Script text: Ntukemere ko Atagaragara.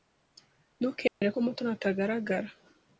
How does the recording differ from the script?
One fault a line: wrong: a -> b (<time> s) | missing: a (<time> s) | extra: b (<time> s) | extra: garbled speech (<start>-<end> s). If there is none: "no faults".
extra: Mutoni (1.4 s)